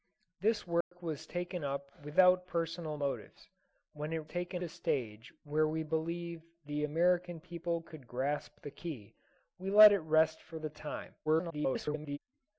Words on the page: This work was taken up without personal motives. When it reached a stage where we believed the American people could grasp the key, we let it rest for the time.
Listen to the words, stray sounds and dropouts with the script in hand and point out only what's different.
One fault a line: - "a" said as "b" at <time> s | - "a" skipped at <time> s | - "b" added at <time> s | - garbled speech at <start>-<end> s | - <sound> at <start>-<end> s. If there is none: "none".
- dropout at 0.8-0.9 s
- "reached" said as "taken" at 4.3 s
- garbled speech at 11.3-12.2 s